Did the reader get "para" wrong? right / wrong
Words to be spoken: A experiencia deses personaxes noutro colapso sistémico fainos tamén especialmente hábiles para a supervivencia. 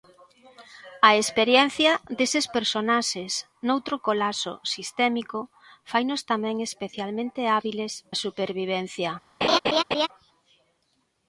wrong